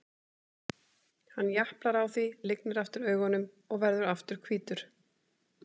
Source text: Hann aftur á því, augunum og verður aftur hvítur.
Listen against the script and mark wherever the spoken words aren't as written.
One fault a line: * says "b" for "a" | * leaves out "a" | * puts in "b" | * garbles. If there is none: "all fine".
* says "japlar" for "aftur"
* puts in "lygnir aftur"